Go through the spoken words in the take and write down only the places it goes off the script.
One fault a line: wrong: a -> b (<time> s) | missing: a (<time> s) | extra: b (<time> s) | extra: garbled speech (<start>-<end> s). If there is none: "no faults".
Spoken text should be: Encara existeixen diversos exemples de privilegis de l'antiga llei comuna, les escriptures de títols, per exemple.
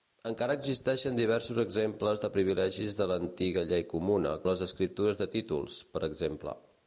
no faults